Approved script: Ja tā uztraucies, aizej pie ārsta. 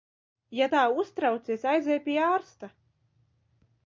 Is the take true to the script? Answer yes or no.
yes